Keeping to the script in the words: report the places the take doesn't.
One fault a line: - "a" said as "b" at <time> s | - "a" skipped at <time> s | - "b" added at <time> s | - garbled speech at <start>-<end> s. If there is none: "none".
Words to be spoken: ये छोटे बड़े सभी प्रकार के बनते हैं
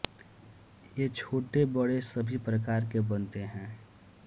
none